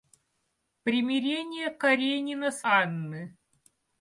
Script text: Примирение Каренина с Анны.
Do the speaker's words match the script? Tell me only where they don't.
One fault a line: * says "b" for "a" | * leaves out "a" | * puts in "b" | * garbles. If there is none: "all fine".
all fine